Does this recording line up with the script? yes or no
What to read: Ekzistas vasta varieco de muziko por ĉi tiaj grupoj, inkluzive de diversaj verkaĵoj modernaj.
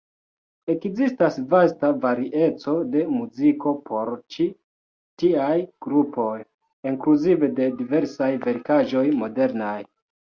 yes